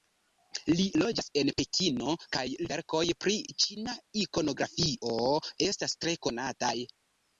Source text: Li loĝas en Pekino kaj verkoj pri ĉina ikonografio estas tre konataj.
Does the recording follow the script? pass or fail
pass